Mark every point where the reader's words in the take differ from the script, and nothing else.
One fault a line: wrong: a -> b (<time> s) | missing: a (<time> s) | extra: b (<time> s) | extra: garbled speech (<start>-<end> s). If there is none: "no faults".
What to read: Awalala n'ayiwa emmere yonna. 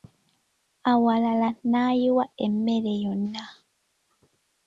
no faults